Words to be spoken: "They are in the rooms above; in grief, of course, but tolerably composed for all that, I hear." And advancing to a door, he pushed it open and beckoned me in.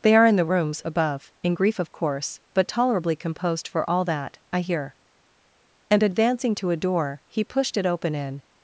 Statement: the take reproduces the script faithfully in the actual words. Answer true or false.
false